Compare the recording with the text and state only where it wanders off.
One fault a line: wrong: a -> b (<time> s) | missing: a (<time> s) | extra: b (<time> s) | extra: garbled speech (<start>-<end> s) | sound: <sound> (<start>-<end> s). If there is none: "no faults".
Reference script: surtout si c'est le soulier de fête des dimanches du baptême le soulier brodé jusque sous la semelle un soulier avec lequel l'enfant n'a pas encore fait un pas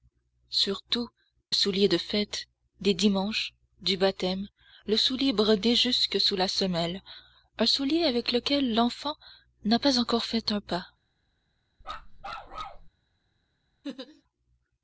missing: si c'est le (1.1 s)
sound: bark (11.8-12.9 s)
sound: laugh (13.8-14.2 s)